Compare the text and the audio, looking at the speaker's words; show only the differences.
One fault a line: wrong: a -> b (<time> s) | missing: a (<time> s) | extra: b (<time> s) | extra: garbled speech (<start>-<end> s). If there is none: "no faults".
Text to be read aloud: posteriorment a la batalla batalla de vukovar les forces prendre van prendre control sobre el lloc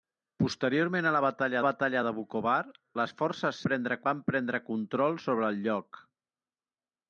no faults